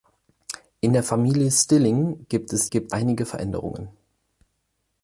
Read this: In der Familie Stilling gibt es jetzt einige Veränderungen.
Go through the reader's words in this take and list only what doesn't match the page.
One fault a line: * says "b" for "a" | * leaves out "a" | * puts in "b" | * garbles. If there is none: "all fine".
* says "gibt" for "jetzt"